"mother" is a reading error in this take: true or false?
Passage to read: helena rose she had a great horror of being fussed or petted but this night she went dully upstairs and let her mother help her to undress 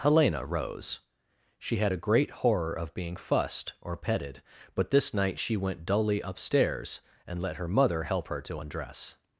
false